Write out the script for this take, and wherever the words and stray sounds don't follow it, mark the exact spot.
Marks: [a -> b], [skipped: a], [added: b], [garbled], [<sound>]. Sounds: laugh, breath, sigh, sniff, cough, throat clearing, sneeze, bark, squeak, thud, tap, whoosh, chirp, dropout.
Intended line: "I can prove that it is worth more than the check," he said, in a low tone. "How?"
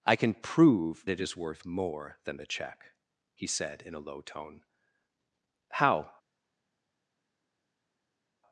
"I can prove [skipped: that] it is worth more than the check," he said, in a low tone. "How?"